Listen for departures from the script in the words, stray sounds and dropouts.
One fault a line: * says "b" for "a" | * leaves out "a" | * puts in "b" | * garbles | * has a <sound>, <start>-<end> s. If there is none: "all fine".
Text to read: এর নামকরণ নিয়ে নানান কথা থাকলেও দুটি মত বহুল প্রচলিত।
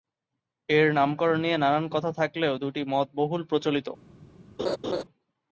* has a laugh, 4.6-5.0 s